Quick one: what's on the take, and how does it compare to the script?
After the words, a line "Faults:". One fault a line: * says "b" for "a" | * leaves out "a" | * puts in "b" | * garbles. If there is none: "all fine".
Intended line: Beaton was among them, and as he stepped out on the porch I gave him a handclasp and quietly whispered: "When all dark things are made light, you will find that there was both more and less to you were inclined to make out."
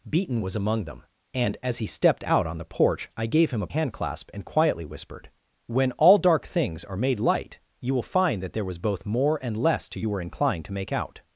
Beaton was among them, and as he stepped out on the porch I gave him a handclasp and quietly whispered: "When all dark things are made light, you will find that there was both more and less to you were inclined to make out."
Faults:
all fine